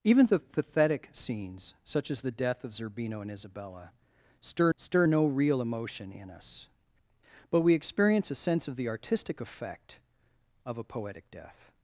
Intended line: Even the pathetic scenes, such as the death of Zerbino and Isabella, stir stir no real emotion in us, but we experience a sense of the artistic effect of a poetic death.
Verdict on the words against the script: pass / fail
pass